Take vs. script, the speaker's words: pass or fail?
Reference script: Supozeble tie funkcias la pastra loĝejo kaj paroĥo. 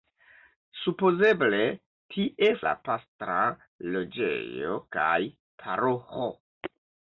fail